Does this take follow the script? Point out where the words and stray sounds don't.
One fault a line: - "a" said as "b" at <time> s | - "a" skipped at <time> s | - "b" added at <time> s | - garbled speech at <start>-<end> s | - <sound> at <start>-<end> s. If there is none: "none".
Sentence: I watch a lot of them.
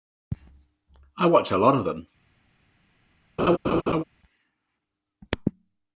- laugh at 3.4-4.0 s